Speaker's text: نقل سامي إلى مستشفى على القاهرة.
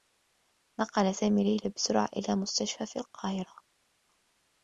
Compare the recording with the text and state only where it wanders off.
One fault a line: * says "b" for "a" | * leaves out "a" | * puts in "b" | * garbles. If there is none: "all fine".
* puts in "ليلى بسرعة"
* says "في" for "على"